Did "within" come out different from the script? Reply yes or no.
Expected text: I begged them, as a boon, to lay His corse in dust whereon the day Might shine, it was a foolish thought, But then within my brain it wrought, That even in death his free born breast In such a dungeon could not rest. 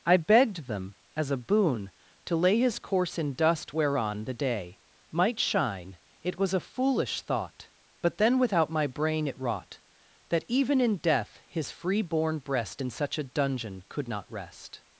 yes